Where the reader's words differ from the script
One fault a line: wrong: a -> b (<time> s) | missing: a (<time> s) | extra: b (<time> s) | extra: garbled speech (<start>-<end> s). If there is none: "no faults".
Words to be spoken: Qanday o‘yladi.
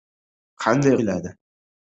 no faults